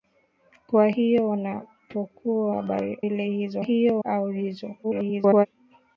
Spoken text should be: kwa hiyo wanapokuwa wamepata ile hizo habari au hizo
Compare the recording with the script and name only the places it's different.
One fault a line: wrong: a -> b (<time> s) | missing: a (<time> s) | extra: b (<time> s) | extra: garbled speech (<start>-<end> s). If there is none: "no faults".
wrong: wamepata -> habari (2.5 s)
wrong: habari -> hiyo (3.6 s)
extra: garbled speech (4.8-5.5 s)